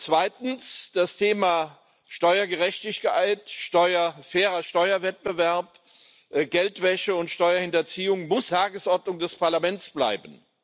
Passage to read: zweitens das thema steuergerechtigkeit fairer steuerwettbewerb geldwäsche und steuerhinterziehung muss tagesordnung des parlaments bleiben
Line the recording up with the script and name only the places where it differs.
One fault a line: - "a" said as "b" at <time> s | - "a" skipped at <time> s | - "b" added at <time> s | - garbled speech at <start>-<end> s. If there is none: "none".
none